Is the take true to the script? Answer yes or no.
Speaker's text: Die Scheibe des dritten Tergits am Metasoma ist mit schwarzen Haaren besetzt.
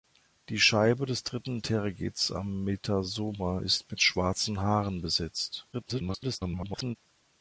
no